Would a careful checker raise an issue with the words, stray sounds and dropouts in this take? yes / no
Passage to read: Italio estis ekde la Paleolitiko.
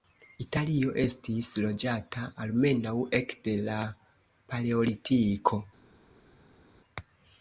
yes